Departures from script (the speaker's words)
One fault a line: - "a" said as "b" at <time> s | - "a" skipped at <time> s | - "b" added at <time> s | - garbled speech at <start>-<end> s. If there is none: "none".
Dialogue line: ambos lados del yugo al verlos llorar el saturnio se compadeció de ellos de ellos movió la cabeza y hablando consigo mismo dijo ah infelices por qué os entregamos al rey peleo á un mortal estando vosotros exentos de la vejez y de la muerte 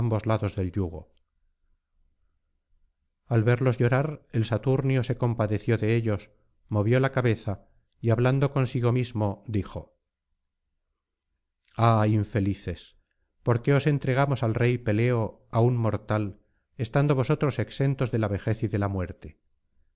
- "de ellos" skipped at 6.3 s